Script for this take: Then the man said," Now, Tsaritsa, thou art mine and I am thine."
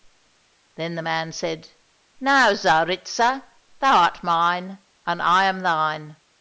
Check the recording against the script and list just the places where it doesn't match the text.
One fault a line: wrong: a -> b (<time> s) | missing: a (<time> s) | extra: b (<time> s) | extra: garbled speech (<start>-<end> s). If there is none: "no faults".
no faults